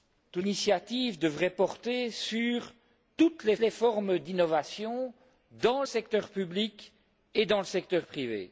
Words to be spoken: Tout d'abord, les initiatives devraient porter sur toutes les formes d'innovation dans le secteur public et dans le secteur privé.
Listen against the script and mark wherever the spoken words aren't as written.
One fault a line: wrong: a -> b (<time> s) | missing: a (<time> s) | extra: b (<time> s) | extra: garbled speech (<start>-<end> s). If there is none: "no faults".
missing: d'abord les (0.4 s)
extra: les (3.6 s)
missing: le (5.8 s)